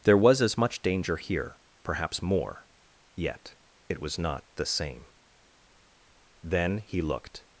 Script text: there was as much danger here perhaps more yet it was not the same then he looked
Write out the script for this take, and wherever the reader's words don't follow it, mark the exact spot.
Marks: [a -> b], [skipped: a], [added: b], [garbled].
there was as much danger here perhaps more yet it was not the same then he looked